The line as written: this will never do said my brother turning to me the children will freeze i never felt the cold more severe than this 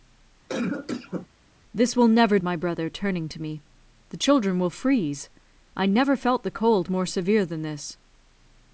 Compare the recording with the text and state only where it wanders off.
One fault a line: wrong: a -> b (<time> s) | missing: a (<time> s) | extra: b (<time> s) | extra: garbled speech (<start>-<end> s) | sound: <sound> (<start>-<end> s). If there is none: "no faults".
sound: cough (0.5-1.3 s)
missing: do said (2.4 s)